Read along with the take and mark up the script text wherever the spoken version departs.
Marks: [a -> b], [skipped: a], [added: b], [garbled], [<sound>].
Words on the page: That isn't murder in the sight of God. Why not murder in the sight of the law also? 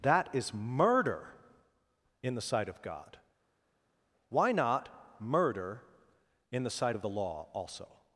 That [isn't -> is] murder in the sight of God. Why not murder in the sight of the law also?